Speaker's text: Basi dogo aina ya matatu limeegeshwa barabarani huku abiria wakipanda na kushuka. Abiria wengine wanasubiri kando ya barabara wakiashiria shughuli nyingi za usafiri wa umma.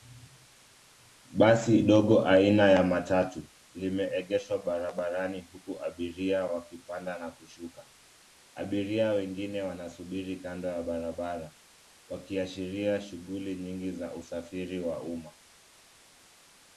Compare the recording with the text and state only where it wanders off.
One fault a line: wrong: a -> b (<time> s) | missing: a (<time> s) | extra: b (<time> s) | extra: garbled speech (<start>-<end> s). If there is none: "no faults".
no faults